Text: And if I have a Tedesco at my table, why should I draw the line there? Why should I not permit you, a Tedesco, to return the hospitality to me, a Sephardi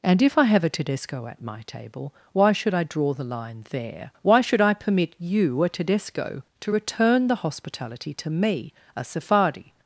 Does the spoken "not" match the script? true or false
false